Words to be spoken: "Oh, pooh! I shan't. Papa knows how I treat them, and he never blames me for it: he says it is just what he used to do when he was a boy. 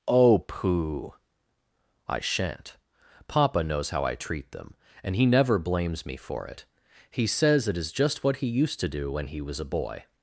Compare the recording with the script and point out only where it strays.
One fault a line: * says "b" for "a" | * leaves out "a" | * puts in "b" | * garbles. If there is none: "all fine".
all fine